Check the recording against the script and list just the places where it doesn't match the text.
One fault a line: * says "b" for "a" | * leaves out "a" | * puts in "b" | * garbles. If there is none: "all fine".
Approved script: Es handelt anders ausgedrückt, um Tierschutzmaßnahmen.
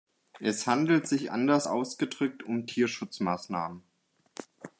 * puts in "sich"